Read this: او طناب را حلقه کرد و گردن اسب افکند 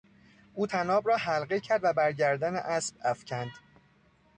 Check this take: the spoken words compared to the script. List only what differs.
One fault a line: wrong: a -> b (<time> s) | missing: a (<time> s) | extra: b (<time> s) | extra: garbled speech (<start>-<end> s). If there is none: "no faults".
extra: بر (1.9 s)